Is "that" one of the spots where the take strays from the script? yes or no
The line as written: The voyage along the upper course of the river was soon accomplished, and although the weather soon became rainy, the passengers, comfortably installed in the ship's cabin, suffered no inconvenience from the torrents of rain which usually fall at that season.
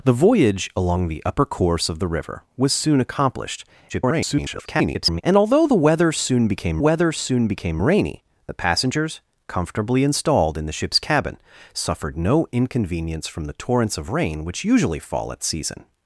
yes